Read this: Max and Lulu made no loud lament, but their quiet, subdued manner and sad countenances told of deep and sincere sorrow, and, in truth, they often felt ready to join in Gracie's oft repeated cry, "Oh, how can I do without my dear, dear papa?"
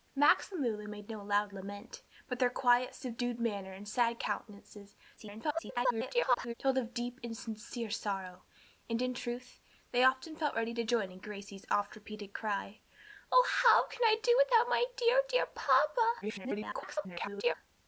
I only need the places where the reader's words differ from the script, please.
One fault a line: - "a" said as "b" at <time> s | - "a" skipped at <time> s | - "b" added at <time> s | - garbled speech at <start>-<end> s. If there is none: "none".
- garbled speech at 5.2-6.5 s
- garbled speech at 16.2-17.5 s